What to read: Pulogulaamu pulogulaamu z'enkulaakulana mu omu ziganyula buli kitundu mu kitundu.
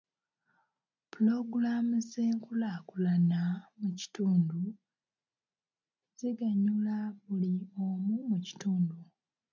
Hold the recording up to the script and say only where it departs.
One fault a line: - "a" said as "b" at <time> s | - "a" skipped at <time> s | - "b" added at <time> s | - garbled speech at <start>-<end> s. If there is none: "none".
- "pulogulaamu" skipped at 1.9 s
- "omu" said as "kitundu" at 4.0 s
- "kitundu" said as "omu" at 7.8 s